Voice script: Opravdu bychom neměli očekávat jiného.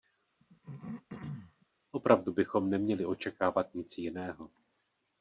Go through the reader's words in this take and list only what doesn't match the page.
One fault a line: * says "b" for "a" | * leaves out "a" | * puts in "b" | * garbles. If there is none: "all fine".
* puts in "nic"